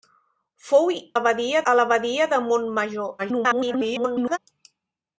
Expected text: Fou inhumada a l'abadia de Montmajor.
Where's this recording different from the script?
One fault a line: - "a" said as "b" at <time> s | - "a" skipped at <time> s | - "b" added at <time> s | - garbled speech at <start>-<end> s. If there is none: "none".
- "inhumada" said as "l'abadia" at 1.2 s
- garbled speech at 3.2-4.4 s